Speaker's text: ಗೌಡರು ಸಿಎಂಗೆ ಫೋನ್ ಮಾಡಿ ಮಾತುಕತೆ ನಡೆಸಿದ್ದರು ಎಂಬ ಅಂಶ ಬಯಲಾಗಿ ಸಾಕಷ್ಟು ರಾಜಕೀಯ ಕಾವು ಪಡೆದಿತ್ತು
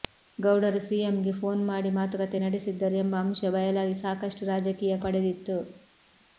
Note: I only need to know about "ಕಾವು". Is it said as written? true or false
false